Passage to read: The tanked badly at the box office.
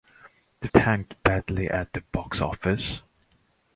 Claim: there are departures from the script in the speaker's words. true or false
false